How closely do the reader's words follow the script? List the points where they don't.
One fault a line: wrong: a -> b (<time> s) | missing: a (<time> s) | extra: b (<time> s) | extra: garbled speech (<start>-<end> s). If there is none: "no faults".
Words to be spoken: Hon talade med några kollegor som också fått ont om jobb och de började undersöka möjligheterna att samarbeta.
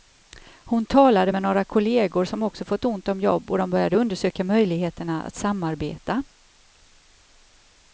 no faults